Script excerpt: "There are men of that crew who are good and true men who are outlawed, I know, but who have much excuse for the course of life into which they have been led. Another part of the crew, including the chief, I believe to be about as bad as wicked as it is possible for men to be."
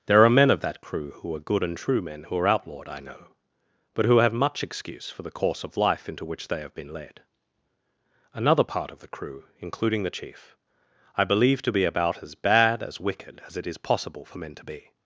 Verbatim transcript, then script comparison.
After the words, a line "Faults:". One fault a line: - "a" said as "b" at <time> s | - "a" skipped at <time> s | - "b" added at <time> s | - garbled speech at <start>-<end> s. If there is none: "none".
"There are men of that crew who are good and true men who are outlawed, I know, but who have much excuse for the course of life into which they have been led. Another part of the crew, including the chief, I believe to be about as bad as wicked as it is possible for men to be."
Faults:
none